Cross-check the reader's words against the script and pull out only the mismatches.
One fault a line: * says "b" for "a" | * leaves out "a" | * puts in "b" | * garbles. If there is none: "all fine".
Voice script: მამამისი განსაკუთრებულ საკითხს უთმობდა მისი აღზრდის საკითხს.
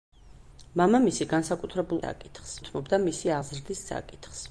all fine